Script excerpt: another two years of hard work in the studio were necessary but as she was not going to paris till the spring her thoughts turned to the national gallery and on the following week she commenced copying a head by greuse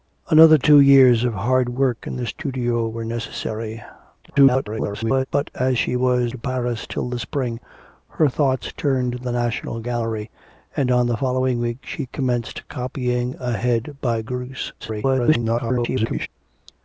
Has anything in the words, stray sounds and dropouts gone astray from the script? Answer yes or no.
yes